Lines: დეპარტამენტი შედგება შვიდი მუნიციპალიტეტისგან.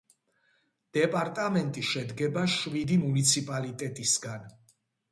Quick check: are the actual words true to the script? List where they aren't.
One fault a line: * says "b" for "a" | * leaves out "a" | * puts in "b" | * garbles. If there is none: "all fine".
all fine